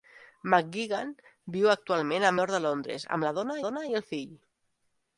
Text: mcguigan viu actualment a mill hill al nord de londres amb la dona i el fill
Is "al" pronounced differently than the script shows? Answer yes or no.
yes